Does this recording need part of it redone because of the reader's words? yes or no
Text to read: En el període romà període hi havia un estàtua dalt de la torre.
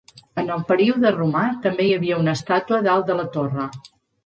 yes